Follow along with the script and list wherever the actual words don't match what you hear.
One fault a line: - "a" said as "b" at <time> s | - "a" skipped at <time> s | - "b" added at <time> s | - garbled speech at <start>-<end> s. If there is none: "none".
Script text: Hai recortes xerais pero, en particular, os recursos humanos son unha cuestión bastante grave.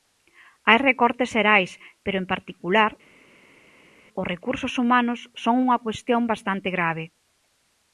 none